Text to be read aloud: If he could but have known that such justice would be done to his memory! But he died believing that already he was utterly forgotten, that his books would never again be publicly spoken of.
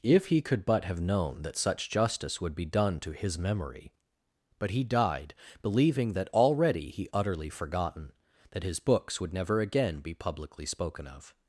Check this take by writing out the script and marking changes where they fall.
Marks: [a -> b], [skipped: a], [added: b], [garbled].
If he could but have known that such justice would be done to his memory! But he died believing that already he [skipped: was] utterly forgotten, that his books would never again be publicly spoken of.